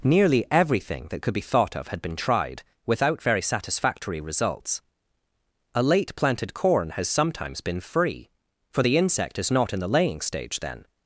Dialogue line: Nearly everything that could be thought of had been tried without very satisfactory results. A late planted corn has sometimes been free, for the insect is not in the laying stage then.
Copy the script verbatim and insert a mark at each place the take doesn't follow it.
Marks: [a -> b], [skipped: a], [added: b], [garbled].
Nearly everything that could be thought of had been tried without very satisfactory results. A late planted corn has sometimes been free, for the insect is not in the laying stage then.